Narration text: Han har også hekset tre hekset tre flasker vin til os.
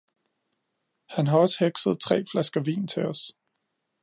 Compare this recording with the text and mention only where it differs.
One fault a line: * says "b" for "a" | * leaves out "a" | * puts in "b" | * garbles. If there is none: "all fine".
* leaves out "hekset tre"